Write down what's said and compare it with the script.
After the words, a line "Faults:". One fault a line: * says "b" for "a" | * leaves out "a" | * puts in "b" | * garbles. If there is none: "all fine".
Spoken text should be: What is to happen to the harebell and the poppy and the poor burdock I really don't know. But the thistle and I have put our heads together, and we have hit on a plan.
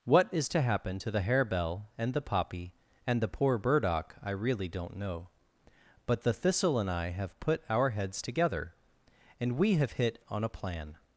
What is to happen to the harebell and the poppy and the poor burdock I really don't know. But the thistle and I have put our heads together, and we have hit on a plan.
Faults:
all fine